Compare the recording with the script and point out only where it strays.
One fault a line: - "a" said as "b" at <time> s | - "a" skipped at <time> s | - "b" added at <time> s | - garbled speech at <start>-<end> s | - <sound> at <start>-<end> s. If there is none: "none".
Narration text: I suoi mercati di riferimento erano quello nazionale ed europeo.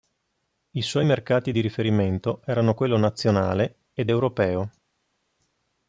none